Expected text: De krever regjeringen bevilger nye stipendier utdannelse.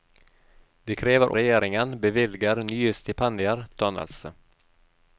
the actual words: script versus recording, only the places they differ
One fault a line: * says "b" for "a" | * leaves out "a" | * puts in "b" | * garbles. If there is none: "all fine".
all fine